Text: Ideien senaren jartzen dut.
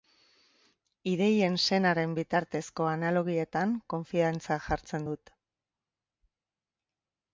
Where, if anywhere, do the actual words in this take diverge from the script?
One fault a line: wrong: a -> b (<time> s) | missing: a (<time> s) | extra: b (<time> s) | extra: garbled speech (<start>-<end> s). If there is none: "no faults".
extra: bitartezko analogietan konfiantza (2.2 s)